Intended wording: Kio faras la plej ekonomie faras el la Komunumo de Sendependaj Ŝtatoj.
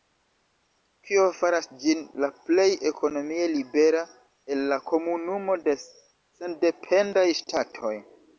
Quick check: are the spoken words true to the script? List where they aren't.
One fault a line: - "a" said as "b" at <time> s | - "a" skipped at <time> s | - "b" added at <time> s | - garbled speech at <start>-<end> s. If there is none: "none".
- "ĝin" added at 1.8 s
- "faras" said as "libera" at 3.5 s